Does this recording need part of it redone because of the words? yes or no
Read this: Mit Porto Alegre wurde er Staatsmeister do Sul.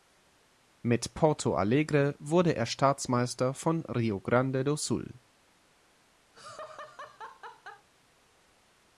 yes